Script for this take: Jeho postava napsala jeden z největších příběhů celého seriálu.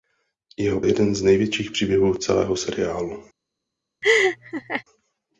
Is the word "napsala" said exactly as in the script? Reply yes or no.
no